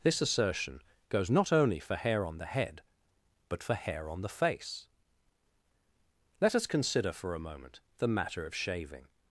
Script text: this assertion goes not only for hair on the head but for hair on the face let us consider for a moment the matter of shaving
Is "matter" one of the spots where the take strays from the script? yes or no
no